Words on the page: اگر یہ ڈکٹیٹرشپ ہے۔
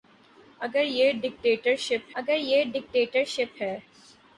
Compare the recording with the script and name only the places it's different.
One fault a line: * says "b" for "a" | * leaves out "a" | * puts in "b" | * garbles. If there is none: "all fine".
* puts in "اگر یہ ڈکٹیٹرشپ"